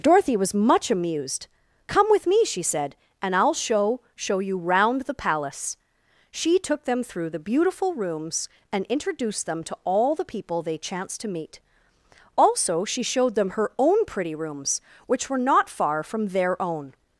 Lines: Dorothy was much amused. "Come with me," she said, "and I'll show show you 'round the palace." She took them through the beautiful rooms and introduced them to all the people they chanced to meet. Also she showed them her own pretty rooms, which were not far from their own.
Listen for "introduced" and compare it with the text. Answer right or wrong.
right